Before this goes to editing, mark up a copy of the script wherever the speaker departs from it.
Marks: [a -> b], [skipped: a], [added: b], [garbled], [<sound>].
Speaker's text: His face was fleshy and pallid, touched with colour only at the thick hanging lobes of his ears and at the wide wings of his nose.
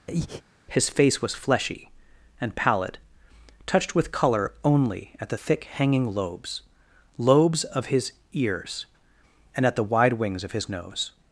[breath] His face was fleshy and pallid, touched with colour only at the thick hanging lobes [added: lobes] of his ears and at the wide wings of his nose.